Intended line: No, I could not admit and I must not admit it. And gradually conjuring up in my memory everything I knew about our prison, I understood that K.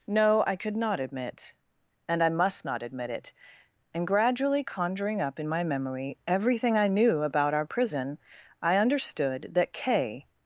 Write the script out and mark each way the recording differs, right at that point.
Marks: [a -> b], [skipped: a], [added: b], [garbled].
No, I could not admit and I must not admit it. And gradually conjuring up in my memory everything I knew about our prison, I understood that K.